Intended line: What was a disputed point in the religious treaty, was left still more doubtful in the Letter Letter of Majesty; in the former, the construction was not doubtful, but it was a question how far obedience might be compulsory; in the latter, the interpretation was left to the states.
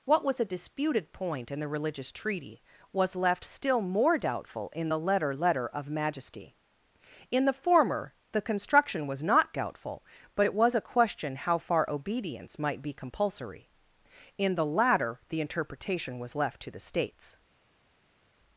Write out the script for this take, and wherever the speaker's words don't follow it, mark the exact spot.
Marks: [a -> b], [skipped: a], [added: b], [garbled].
What was a disputed point in the religious treaty, was left still more doubtful in the Letter Letter of Majesty; in the former, the construction was not doubtful, but it was a question how far obedience might be compulsory; in the latter, the interpretation was left to the states.